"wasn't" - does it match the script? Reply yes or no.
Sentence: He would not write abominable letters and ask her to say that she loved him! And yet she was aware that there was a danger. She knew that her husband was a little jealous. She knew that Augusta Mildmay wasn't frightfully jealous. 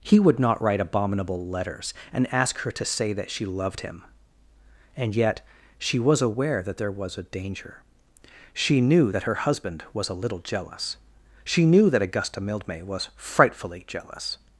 no